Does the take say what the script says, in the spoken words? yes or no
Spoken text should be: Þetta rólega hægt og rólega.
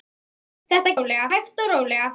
yes